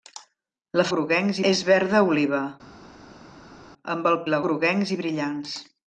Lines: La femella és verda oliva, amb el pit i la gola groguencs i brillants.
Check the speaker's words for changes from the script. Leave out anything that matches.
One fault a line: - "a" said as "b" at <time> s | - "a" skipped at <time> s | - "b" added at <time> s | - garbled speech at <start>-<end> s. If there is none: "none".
- "femella" said as "groguencs" at 0.9 s
- "pit" skipped at 4.2 s
- "gola" skipped at 4.4 s